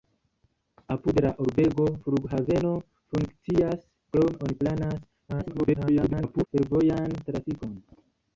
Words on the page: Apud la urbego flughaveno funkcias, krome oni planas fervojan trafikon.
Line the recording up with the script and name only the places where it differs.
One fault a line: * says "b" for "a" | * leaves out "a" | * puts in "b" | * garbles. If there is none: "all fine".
* garbles